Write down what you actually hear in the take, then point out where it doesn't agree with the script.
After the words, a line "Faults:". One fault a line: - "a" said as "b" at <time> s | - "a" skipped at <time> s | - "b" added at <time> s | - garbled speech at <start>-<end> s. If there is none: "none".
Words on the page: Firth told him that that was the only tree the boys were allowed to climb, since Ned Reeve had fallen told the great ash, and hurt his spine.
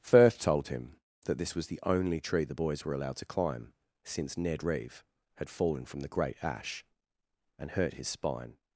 Firth told him that this was the only tree the boys were allowed to climb, since Ned Reeve had fallen from the great ash, and hurt his spine.
Faults:
- "that" said as "this" at 1.4 s
- "told" said as "from" at 5.8 s